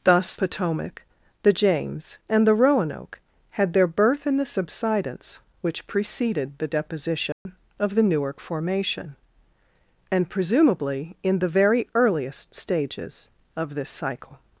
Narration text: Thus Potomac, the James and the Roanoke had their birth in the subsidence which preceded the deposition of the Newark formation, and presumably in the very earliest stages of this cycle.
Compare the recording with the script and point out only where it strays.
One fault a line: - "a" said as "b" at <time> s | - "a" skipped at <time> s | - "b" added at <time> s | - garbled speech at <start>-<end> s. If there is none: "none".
none